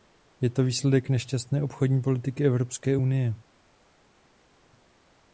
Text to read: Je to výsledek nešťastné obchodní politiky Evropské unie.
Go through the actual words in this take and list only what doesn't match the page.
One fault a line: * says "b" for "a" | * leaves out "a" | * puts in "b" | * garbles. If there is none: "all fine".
all fine